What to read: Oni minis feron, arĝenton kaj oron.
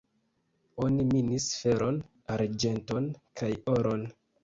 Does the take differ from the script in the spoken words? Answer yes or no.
no